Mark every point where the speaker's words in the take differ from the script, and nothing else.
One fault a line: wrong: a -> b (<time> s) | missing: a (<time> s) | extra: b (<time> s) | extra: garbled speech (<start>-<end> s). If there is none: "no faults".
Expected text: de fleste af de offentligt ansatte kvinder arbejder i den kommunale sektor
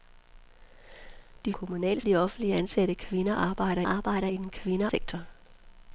wrong: fleste -> kommunale (1.5 s)
extra: arbejder (3.8 s)
wrong: kommunale -> kvinder (4.5 s)